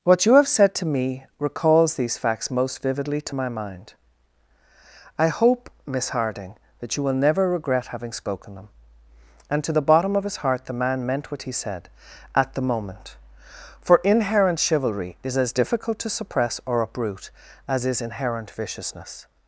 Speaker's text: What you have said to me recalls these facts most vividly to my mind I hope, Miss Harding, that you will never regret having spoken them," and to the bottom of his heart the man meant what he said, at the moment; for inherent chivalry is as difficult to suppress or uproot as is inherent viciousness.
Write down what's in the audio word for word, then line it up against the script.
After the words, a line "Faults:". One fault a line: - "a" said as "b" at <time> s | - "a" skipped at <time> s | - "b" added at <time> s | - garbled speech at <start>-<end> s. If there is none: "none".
What you have said to me recalls these facts most vividly to my mind I hope, Miss Harding, that you will never regret having spoken them," and to the bottom of his heart the man meant what he said, at the moment; for inherent chivalry is as difficult to suppress or uproot as is inherent viciousness.
Faults:
none